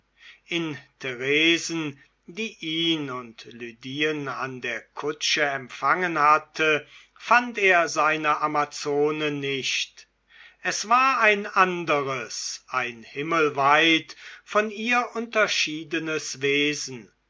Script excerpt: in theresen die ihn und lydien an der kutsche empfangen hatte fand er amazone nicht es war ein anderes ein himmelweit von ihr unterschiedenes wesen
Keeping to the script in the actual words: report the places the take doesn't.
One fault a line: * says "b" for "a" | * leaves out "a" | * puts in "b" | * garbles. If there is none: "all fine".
* puts in "seine"